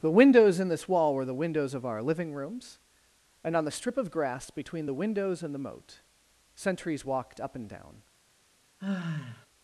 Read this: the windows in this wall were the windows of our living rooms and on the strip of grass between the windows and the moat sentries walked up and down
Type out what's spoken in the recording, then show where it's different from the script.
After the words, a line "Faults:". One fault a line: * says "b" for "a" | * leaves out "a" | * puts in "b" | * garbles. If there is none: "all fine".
the windows in this wall were the windows of our living rooms and on the strip of grass between the windows and the moat sentries walked up and down
Faults:
all fine